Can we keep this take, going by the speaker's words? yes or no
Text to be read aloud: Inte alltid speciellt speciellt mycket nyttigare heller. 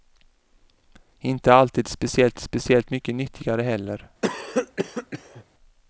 yes